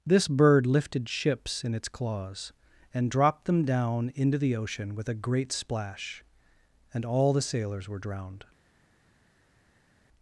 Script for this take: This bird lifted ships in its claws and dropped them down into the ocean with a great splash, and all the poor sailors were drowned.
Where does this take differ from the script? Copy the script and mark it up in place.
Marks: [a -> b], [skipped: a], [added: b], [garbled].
This bird lifted ships in its claws and dropped them down into the ocean with a great splash, and all the [skipped: poor] sailors were drowned.